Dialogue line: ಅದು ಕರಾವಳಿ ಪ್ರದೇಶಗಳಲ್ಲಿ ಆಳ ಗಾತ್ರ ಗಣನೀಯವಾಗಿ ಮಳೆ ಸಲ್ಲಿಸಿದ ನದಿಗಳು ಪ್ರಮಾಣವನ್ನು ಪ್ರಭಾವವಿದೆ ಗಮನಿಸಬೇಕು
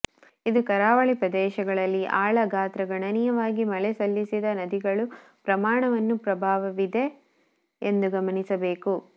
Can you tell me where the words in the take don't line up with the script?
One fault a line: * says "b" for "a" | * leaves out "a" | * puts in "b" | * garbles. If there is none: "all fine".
* says "ಇದು" for "ಅದು"
* puts in "ಎಂದು"